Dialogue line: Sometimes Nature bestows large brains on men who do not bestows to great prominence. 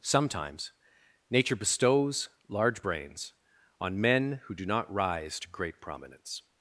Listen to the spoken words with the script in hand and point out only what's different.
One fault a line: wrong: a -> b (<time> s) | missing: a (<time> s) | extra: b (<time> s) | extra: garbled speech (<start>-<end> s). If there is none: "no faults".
wrong: bestows -> rise (4.9 s)